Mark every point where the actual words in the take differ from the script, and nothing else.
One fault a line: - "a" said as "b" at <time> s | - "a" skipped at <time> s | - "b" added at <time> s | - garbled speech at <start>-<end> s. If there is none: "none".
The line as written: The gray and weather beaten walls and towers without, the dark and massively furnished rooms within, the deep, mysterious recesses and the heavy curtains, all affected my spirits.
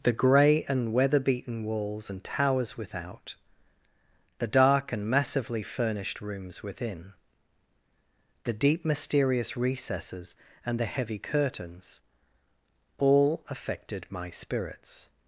none